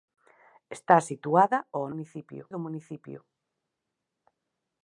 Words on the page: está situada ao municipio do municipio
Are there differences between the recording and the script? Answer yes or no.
no